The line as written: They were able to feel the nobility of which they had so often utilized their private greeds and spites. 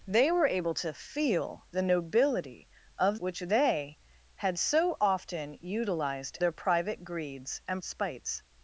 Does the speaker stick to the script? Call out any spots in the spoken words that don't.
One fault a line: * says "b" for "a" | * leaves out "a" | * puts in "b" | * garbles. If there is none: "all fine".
all fine